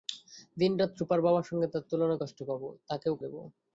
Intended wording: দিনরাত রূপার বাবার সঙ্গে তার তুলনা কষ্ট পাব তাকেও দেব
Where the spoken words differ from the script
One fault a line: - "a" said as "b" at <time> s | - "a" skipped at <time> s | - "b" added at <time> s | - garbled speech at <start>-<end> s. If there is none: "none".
none